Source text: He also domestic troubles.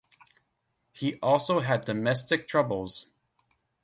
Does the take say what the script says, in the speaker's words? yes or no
no